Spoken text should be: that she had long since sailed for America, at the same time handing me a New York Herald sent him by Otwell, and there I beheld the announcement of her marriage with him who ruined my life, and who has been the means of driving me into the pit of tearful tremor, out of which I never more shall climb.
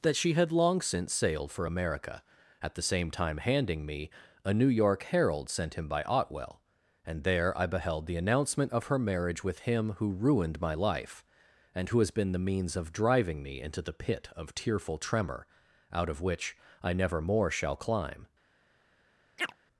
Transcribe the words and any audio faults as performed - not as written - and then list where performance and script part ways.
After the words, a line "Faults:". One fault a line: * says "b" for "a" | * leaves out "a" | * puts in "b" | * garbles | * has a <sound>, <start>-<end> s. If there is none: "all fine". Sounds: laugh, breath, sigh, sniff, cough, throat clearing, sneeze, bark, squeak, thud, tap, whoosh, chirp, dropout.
that she had long since sailed for America, at the same time handing me a New York Herald sent him by Otwell, and there I beheld the announcement of her marriage with him who ruined my life, and who has been the means of driving me into the pit of tearful tremor, out of which I never more shall climb.
Faults:
* has a chirp, 19.4-19.6 s